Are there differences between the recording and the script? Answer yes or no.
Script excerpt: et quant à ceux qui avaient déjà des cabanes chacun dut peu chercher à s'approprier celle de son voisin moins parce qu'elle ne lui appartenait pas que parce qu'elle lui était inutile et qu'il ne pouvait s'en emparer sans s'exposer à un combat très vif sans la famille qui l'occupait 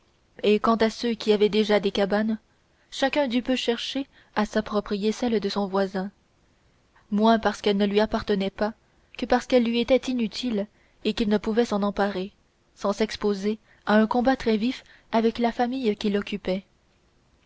yes